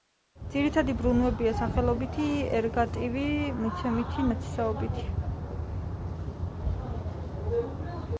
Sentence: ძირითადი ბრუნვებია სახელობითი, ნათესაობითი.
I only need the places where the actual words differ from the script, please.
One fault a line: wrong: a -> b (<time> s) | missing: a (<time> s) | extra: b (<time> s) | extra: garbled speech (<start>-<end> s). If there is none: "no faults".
extra: ერგატივი მიცემითი (2.6 s)